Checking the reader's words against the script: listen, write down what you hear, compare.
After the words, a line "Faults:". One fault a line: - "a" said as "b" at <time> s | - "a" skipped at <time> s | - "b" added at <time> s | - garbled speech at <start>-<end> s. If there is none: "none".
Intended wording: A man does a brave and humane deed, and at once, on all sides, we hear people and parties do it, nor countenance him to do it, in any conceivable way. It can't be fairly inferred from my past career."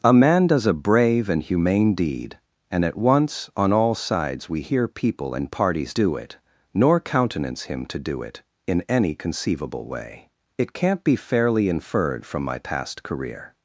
A man does a brave and humane deed, and at once, on all sides, we hear people and parties do it, nor countenance him to do it, in any conceivable way. It can't be fairly inferred from my past career."
Faults:
none